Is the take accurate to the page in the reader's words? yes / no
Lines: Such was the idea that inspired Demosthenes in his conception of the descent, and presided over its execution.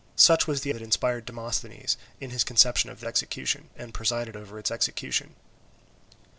no